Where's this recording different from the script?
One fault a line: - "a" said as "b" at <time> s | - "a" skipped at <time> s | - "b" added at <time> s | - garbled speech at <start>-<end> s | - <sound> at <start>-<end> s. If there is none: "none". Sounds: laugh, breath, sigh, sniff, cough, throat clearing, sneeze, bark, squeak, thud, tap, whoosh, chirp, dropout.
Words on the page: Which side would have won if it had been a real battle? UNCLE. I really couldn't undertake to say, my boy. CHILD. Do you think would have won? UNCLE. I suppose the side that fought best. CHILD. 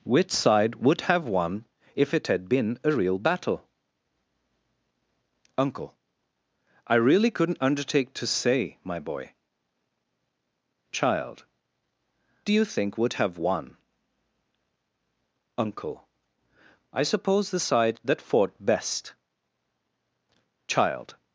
none